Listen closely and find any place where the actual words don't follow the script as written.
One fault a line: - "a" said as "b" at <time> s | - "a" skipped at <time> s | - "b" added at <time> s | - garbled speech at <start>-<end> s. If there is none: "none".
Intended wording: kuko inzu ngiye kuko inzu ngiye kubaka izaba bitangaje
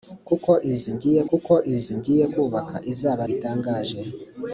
none